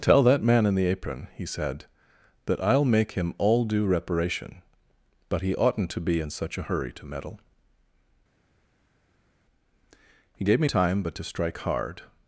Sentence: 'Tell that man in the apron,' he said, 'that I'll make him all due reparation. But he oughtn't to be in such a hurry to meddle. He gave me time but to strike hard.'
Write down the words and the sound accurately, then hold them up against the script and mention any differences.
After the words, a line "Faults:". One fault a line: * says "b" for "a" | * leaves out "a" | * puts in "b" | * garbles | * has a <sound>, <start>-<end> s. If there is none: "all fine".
'Tell that man in the apron,' he said, 'that I'll make him all due reparation. But he oughtn't to be in such a hurry to meddle. He gave me time but to strike hard.'
Faults:
all fine